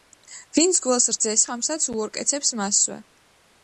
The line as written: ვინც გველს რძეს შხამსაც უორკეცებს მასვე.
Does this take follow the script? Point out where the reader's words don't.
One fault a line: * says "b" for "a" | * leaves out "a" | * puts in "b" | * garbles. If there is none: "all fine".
all fine